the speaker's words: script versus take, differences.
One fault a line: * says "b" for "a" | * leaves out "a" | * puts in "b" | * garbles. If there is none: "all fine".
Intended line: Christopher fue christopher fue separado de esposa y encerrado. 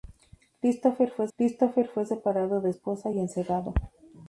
all fine